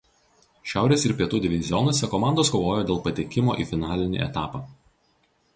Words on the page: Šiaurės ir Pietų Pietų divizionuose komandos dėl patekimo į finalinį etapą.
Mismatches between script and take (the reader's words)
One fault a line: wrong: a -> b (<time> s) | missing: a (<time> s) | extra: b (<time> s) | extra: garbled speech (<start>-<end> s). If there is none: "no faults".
missing: Pietų (1.4 s)
extra: kovojo (2.6 s)